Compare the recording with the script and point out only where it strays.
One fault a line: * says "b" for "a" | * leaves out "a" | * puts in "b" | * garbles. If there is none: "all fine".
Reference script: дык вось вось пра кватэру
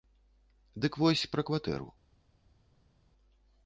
* leaves out "вось"